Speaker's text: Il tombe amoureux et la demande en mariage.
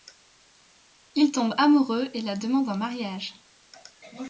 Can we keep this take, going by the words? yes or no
yes